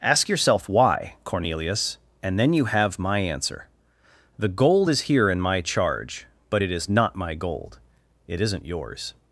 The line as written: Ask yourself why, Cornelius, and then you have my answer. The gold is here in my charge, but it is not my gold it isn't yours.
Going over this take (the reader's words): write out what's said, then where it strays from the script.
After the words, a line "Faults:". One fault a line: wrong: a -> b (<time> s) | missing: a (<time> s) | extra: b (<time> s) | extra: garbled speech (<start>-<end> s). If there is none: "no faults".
Ask yourself why, Cornelius, and then you have my answer. The gold is here in my charge, but it is not my gold it isn't yours.
Faults:
no faults